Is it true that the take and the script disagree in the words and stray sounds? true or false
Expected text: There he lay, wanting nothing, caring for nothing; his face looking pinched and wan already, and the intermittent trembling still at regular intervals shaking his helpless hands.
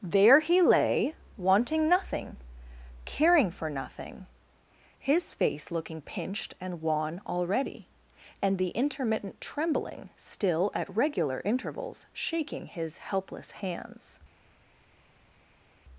false